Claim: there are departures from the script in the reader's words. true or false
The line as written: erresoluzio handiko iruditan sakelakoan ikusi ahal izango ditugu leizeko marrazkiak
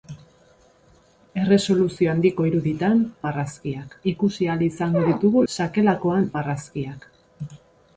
true